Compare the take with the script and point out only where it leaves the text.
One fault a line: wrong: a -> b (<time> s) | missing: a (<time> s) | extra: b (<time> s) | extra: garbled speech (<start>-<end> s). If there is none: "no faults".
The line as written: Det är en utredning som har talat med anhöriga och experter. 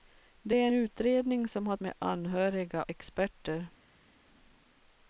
missing: en (0.7 s)
missing: talat (1.8 s)
missing: och (2.8 s)